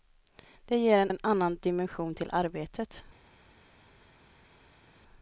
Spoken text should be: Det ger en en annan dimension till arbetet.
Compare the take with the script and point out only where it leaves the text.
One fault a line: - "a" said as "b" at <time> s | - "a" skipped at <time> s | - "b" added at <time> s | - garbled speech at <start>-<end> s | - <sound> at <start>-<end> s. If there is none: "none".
none